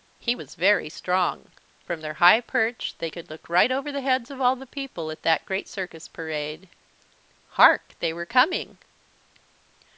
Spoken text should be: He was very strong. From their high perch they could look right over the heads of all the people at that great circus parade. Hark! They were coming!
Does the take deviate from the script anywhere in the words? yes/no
no